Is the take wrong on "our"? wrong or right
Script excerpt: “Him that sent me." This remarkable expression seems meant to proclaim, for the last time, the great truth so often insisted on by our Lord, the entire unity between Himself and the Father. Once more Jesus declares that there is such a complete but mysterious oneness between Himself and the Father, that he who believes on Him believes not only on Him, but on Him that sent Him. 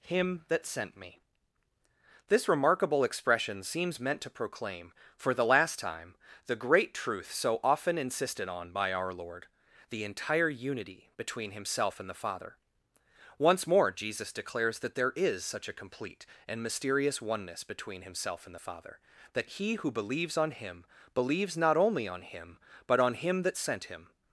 right